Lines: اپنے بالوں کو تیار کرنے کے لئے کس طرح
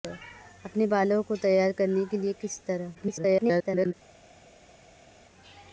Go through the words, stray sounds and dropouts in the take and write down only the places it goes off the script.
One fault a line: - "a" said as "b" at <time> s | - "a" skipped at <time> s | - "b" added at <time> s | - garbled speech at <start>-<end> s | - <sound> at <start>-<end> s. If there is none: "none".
- garbled speech at 2.9-3.9 s